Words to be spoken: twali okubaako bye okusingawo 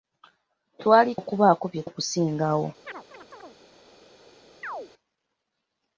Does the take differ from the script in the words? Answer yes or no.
no